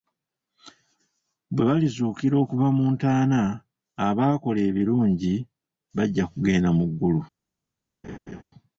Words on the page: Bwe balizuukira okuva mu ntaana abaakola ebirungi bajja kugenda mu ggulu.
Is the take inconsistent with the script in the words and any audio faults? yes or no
yes